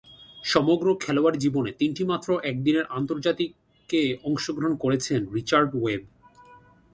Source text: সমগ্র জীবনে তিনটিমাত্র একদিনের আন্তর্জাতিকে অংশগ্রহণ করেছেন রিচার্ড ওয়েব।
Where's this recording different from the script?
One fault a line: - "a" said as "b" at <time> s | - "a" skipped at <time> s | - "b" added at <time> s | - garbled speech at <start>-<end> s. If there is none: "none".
- "খেলোয়াড়ী" added at 0.9 s